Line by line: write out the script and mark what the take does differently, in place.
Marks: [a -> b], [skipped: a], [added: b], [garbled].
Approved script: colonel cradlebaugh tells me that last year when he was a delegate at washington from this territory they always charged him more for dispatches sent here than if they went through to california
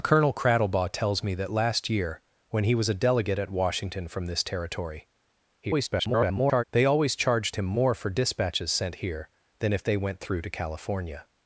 colonel cradlebaugh tells me that last year when he was a delegate at washington from this territory [garbled] they always charged him more for dispatches sent here than if they went through to california